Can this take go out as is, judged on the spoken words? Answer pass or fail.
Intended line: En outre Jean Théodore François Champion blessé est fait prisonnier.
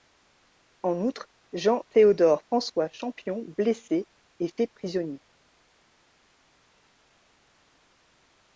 pass